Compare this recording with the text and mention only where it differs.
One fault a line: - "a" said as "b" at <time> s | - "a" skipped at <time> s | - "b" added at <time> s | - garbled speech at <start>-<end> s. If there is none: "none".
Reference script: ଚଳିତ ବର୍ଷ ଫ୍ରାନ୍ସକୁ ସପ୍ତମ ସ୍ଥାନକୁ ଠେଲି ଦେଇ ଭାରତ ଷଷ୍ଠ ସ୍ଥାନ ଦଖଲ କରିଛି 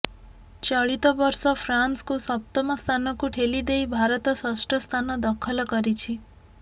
none